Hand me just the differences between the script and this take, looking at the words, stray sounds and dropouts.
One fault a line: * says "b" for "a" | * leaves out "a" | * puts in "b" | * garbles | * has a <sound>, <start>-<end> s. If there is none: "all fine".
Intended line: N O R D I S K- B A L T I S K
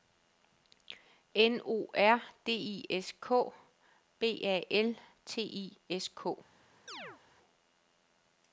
* has a chirp, 6.9-7.2 s